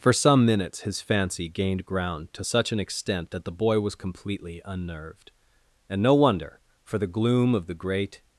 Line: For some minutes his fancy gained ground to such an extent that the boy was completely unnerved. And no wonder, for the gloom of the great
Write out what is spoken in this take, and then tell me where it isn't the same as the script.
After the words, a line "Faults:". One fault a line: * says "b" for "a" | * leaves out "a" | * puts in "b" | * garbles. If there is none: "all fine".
For some minutes his fancy gained ground to such an extent that the boy was completely unnerved. And no wonder, for the gloom of the great
Faults:
all fine